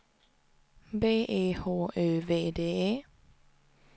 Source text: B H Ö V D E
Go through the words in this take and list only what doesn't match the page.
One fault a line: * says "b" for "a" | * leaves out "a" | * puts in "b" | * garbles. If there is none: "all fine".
* puts in "E"